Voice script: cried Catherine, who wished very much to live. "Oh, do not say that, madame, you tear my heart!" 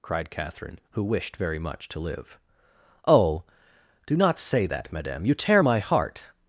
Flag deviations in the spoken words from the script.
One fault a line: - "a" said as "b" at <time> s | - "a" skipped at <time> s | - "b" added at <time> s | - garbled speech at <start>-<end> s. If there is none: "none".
none